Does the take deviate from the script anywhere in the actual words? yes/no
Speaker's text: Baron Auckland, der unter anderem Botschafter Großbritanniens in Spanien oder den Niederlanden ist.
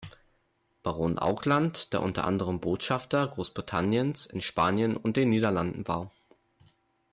yes